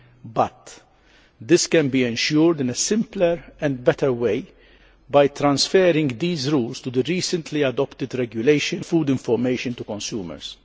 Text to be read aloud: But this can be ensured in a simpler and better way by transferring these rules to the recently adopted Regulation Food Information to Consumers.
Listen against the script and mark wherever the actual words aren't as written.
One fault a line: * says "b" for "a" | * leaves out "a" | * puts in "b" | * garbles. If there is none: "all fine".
all fine